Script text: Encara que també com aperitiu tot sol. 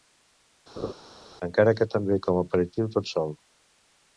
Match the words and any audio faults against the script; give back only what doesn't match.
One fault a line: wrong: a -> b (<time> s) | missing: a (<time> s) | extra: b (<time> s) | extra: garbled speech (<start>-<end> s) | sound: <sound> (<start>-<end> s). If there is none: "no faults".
sound: laugh (0.8-0.9 s)